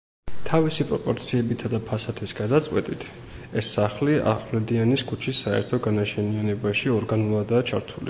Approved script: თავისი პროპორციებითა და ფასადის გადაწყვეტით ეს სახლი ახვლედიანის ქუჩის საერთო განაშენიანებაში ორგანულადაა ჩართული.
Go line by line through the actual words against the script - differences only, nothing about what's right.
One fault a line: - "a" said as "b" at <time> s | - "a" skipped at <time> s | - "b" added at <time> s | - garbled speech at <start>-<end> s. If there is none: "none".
none